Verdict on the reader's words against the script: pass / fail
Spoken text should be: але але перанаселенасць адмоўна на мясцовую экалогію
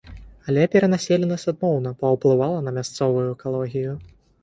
fail